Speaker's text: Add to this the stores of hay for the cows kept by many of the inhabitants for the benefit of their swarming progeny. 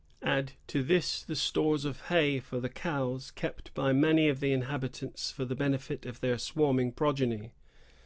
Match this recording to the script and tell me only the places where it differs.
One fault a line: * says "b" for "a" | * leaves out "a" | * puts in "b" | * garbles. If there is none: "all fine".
all fine